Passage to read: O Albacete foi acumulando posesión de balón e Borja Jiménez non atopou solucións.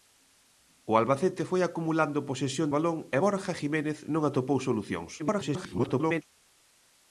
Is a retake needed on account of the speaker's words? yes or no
yes